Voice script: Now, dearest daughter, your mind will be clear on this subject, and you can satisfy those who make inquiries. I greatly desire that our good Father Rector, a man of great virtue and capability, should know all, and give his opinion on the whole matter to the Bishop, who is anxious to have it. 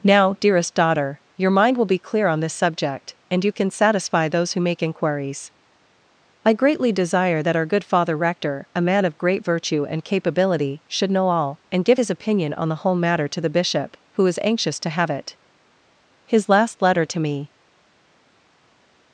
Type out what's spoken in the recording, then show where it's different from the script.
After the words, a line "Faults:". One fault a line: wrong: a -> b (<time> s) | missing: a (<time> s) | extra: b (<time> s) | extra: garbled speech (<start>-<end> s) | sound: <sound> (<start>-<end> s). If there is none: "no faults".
Now, dearest daughter, your mind will be clear on this subject, and you can satisfy those who make inquiries. I greatly desire that our good Father Rector, a man of great virtue and capability, should know all, and give his opinion on the whole matter to the Bishop, who is anxious to have it. His last letter to me
Faults:
extra: His last letter to me (16.3 s)